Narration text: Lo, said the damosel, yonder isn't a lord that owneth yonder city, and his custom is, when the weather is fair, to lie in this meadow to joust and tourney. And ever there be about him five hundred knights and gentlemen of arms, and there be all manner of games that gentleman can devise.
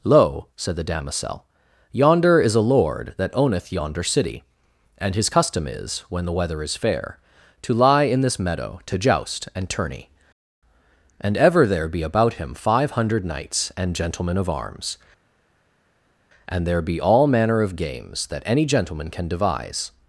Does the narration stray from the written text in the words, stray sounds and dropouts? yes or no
yes